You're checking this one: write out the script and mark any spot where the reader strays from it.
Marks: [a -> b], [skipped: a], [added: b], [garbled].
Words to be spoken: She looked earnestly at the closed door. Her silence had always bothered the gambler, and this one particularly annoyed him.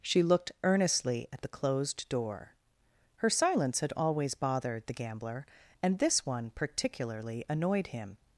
She looked earnestly at the closed door. Her silence had always bothered the gambler, and this one particularly annoyed him.